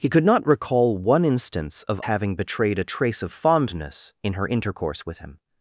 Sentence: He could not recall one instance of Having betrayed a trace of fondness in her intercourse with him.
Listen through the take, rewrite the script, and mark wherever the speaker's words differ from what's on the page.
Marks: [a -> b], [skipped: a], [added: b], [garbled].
He could not recall one instance of Having betrayed a trace of fondness in her intercourse with him.